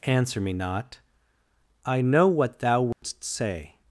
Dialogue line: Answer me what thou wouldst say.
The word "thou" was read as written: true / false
true